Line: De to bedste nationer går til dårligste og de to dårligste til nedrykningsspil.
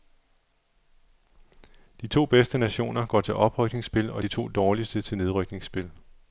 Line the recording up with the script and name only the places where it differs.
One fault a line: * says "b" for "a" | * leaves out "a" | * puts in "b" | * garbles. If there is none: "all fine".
* says "oprykningsspil" for "dårligste"